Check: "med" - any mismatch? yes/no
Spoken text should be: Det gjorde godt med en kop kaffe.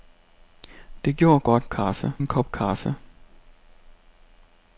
yes